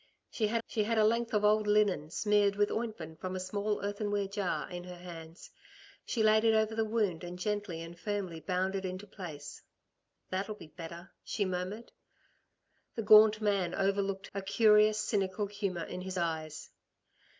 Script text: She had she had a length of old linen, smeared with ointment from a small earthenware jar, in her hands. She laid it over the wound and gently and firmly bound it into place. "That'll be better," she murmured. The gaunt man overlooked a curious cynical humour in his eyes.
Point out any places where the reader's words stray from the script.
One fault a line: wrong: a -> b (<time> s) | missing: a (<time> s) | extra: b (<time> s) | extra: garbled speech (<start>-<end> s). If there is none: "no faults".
no faults